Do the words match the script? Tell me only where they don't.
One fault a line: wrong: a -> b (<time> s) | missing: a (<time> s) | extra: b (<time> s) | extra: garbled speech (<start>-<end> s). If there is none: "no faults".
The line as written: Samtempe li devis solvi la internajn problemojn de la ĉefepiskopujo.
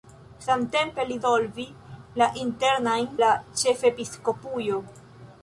missing: devis (1.2 s)
missing: problemojn de (3.1 s)